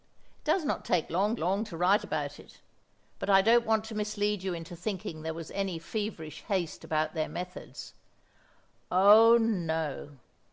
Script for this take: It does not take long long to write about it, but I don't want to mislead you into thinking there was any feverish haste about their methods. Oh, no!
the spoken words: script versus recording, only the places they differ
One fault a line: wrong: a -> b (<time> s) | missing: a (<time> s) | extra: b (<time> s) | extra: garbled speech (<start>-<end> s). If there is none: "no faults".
no faults